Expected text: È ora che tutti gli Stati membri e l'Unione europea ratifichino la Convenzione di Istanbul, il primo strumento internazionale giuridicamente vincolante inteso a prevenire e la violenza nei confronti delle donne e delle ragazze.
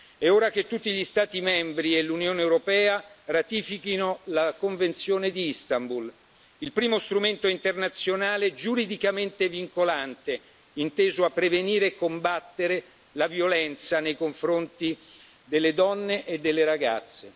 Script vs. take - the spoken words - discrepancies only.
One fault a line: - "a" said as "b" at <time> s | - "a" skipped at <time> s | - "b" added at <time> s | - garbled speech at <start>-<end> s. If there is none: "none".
- "combattere" added at 12.0 s